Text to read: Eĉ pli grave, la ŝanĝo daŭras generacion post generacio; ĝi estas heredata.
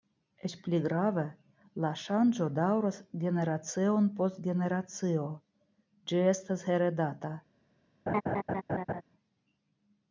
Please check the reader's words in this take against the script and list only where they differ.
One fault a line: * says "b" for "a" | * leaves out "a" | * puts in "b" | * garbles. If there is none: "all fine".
all fine